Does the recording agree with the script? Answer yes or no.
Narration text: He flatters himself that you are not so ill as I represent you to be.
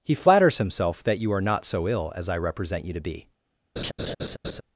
yes